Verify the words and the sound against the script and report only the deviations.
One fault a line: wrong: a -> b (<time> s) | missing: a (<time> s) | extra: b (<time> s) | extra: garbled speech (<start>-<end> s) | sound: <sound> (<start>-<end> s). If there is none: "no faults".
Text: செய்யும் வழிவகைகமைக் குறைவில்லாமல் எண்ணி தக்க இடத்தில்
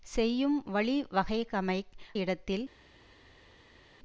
missing: குறைவில்லாமல் எண்ணி தக்க (1.9 s)